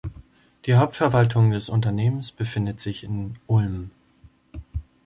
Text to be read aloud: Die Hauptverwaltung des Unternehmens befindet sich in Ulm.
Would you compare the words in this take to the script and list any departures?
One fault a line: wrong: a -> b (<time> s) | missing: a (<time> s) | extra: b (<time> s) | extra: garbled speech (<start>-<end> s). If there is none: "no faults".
no faults